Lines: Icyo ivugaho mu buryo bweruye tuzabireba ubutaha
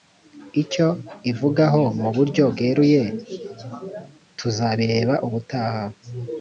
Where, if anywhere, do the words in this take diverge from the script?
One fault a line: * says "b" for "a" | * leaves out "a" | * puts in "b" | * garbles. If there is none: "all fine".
all fine